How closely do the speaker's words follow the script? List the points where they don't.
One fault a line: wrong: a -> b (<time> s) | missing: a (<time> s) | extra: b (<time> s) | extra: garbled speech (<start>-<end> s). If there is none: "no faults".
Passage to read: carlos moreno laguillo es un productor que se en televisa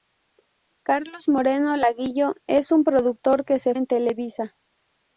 no faults